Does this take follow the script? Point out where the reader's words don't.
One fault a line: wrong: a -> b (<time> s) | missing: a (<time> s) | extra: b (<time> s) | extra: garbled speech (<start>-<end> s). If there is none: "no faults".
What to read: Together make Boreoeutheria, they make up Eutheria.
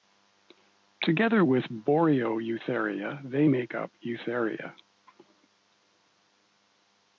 wrong: make -> with (1.4 s)